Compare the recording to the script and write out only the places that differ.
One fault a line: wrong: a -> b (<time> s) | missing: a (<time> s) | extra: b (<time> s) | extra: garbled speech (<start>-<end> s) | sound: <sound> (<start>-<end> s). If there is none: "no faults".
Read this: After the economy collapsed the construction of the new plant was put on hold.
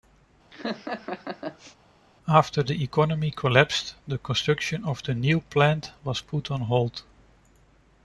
sound: laugh (0.5-1.8 s)